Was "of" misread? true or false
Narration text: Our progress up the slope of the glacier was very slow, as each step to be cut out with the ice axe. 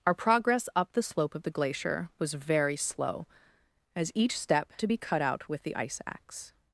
false